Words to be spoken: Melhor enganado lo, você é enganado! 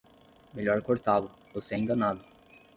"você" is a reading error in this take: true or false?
false